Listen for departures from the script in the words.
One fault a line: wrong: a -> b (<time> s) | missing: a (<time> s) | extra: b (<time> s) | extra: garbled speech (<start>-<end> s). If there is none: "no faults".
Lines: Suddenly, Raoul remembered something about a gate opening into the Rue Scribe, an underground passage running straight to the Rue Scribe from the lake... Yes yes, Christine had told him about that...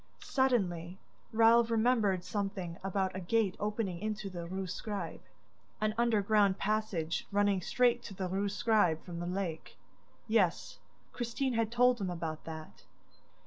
missing: yes (10.8 s)